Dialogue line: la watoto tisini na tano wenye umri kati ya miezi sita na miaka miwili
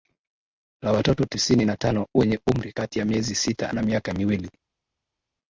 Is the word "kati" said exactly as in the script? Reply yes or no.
yes